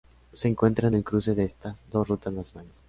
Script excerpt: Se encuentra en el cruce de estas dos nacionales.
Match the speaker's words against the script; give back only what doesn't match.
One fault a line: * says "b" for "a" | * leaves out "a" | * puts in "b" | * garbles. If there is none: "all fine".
* puts in "rutas"